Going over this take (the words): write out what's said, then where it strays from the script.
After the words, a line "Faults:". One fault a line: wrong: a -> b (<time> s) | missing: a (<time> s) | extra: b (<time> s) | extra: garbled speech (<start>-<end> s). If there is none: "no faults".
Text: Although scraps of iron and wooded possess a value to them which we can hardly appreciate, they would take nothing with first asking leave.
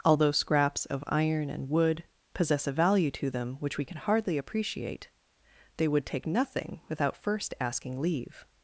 Although scraps of iron and wood possess a value to them which we can hardly appreciate, they would take nothing without first asking leave.
Faults:
wrong: wooded -> wood (1.7 s)
wrong: with -> without (6.9 s)